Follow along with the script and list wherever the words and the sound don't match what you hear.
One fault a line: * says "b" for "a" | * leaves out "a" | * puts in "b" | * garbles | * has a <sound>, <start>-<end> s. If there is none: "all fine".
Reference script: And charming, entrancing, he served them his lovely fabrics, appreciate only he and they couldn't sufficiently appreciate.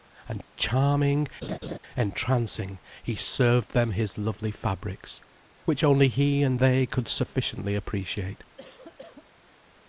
* has a laugh, 1.4-1.8 s
* says "which" for "appreciate"
* says "could" for "couldn't"
* has a cough, 8.6-9.3 s